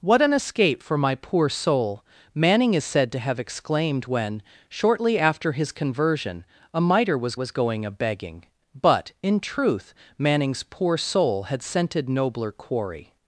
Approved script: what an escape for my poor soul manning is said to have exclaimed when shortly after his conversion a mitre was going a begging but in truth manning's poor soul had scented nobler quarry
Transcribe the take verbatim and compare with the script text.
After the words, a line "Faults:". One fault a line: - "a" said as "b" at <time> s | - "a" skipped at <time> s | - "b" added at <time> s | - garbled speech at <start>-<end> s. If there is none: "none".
what an escape for my poor soul manning is said to have exclaimed when shortly after his conversion a mitre was was going a begging but in truth manning's poor soul had scented nobler quarry
Faults:
- "was" added at 7.3 s